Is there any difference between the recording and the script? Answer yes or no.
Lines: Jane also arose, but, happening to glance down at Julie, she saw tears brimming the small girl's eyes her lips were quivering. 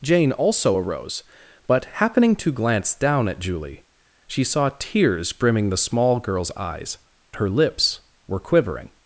no